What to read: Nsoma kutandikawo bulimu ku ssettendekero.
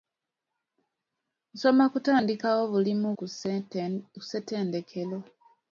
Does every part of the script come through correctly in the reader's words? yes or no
yes